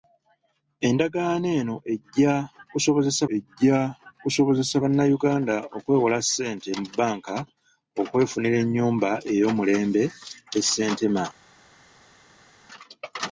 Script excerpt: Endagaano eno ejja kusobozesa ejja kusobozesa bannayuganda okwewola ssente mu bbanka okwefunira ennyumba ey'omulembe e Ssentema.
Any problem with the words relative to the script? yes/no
no